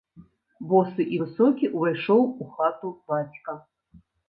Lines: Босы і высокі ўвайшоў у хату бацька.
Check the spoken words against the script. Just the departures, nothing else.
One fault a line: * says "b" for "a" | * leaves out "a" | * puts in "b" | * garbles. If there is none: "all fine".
all fine